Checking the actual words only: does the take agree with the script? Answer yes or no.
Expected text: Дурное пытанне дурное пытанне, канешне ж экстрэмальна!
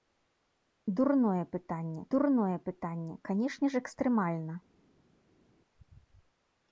yes